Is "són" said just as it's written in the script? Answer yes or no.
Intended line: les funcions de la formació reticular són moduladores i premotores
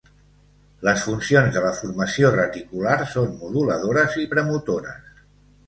yes